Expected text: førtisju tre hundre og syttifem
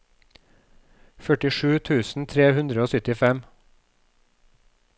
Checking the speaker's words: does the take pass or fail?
fail